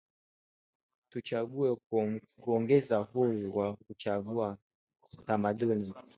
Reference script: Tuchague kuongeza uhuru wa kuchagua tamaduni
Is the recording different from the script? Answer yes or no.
no